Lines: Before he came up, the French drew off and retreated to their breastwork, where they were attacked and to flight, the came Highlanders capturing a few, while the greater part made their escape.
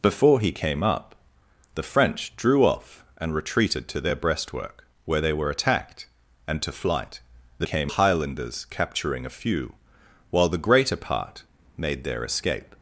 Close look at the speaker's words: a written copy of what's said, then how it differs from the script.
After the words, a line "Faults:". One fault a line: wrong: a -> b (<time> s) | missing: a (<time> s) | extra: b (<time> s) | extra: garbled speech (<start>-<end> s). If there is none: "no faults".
Before he came up, the French drew off and retreated to their breastwork, where they were attacked and to flight, the came Highlanders capturing a few, while the greater part made their escape.
Faults:
no faults